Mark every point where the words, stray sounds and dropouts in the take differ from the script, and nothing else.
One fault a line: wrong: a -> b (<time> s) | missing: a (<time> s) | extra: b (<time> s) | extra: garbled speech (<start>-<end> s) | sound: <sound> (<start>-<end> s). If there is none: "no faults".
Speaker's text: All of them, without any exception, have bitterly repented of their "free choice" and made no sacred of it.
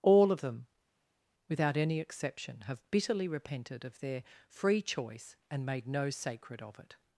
no faults